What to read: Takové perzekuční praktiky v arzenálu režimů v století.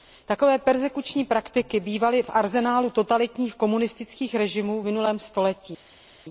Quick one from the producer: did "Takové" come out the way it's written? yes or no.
yes